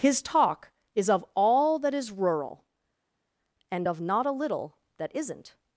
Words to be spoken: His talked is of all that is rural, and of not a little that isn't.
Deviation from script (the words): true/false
true